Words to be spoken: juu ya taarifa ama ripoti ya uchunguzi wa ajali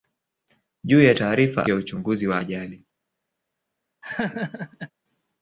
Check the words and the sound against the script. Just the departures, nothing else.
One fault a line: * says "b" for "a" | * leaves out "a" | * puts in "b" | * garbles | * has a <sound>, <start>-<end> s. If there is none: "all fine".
* leaves out "ama ripoti"
* has a laugh, 4.0-4.9 s